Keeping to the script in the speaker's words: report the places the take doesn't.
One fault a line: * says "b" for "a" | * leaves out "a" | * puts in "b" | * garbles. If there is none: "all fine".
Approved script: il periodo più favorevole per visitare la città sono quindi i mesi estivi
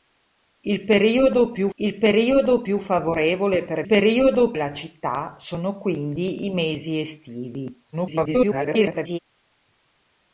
* puts in "il periodo più"
* says "periodo" for "visitare"
* garbles